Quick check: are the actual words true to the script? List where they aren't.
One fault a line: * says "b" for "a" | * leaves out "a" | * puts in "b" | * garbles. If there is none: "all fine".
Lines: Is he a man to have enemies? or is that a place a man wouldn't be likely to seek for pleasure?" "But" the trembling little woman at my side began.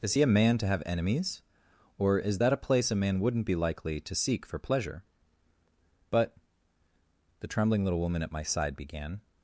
all fine